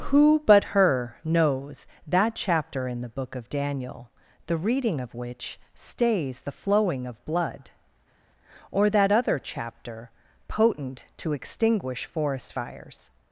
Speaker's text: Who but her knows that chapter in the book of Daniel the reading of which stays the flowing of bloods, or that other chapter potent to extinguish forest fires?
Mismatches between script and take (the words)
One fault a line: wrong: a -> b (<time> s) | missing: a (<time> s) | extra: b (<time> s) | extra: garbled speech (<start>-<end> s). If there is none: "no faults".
wrong: bloods -> blood (7.3 s)